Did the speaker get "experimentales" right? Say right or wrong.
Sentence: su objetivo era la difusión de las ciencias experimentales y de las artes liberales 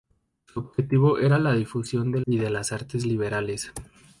wrong